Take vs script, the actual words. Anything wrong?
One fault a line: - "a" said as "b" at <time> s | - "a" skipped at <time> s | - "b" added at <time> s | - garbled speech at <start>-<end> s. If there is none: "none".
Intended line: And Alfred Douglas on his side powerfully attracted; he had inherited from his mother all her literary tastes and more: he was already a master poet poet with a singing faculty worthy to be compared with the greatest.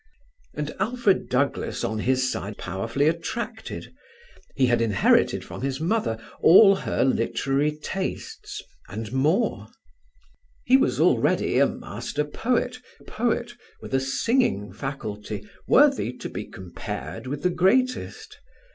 none